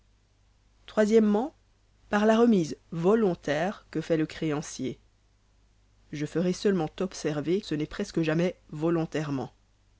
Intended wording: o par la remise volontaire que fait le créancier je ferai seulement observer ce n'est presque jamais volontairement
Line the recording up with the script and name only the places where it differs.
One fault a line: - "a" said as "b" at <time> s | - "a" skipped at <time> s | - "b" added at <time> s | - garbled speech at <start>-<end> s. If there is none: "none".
none